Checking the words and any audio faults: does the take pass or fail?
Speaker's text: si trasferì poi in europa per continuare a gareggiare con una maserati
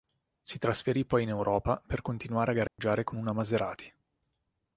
fail